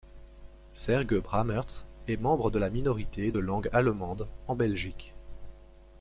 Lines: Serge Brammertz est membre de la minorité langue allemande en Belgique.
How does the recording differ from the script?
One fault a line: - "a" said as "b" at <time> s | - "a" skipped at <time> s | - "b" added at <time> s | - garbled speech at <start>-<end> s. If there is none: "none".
- "de" added at 3.3 s